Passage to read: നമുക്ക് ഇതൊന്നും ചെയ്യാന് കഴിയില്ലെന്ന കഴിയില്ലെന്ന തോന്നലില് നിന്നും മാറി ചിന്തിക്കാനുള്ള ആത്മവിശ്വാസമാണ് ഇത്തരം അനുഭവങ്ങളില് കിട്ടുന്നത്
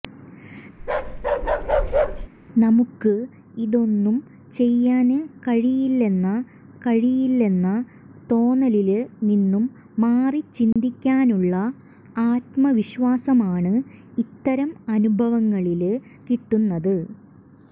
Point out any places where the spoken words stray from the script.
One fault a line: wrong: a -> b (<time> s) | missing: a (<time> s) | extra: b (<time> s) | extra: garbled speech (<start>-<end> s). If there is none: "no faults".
no faults